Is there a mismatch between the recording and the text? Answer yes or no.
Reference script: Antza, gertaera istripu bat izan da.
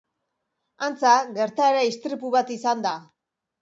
no